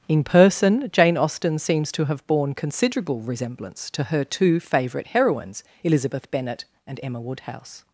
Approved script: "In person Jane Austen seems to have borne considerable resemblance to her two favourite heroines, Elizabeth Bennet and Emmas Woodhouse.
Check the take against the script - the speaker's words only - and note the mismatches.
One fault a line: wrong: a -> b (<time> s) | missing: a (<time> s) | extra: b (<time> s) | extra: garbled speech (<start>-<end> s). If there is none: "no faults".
wrong: Emmas -> Emma (7.0 s)